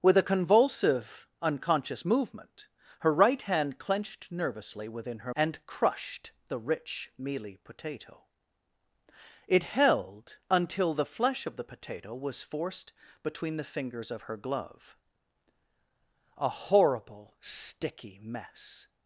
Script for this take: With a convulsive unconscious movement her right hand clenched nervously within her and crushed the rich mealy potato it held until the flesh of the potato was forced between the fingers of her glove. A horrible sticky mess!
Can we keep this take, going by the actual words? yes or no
yes